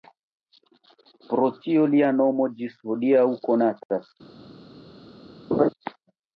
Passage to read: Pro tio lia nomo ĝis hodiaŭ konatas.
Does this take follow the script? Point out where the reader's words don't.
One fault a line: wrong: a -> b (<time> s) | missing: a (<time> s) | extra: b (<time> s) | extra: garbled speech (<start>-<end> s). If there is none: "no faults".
no faults